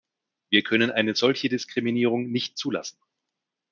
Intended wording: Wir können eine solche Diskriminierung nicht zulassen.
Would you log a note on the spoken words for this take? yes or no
no